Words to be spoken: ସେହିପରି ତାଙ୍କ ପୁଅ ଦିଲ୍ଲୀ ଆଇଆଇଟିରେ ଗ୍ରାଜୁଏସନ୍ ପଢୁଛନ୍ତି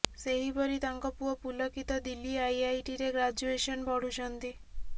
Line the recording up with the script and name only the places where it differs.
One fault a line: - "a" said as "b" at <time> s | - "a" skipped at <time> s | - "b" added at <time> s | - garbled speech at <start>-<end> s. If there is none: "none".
- "ପୁଲକିତ" added at 1.4 s